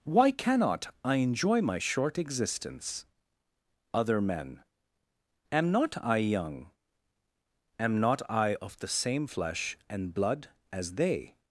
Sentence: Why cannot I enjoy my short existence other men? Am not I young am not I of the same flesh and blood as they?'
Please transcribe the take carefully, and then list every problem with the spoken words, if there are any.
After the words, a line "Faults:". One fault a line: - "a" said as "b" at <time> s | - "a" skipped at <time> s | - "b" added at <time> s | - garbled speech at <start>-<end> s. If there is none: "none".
Why cannot I enjoy my short existence other men? Am not I young am not I of the same flesh and blood as they?'
Faults:
none